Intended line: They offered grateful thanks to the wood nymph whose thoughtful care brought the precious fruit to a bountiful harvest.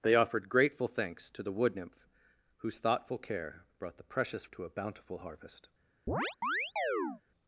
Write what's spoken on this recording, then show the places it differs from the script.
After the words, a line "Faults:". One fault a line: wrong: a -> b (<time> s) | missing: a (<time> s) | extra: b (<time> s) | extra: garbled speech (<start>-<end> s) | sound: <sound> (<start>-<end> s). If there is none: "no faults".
They offered grateful thanks to the wood nymph whose thoughtful care brought the precious to a bountiful harvest.
Faults:
missing: fruit (4.5 s)
sound: chirp (6.1-7.2 s)